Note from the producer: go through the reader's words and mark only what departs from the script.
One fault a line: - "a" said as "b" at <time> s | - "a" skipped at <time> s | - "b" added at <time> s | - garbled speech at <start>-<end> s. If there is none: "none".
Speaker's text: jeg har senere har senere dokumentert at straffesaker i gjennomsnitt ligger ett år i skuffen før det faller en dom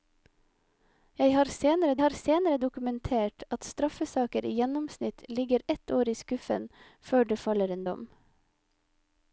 none